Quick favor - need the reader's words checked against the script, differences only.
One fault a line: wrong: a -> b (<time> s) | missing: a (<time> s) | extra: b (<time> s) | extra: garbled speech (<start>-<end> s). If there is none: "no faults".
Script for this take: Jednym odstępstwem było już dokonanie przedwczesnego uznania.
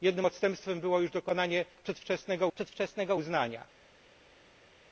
extra: przedwczesnego (2.5 s)